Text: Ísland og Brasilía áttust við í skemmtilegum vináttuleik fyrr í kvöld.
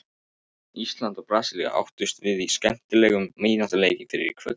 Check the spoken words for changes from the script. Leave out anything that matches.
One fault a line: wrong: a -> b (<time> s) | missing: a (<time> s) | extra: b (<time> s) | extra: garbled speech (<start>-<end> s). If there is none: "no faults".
no faults